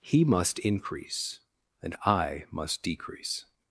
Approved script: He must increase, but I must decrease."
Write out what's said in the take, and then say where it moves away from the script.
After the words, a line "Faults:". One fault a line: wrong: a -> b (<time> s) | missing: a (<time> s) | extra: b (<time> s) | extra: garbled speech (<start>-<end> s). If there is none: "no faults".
He must increase, and I must decrease."
Faults:
wrong: but -> and (1.8 s)